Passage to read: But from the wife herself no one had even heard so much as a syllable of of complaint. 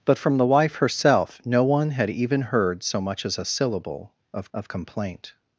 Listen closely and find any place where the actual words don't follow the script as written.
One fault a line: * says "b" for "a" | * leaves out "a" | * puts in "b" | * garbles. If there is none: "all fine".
all fine